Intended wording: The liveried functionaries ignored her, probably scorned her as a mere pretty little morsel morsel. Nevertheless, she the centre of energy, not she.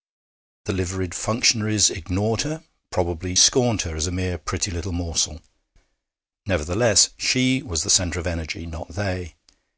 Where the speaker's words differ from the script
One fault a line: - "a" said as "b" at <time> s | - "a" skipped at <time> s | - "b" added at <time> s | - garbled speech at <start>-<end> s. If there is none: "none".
- "morsel" skipped at 5.4 s
- "was" added at 7.6 s
- "she" said as "they" at 8.9 s